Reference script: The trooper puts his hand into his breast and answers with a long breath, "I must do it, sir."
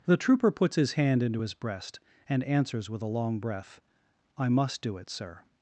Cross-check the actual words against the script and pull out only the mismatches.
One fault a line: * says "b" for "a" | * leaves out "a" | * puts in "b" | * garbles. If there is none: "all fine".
all fine